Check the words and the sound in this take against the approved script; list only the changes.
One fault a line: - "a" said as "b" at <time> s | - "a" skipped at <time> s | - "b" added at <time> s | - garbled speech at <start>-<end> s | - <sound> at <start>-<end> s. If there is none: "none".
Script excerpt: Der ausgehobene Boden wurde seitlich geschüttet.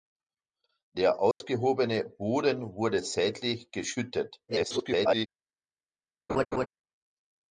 - dropout at 1.3-1.4 s
- garbled speech at 4.5-5.3 s
- laugh at 6.3-6.7 s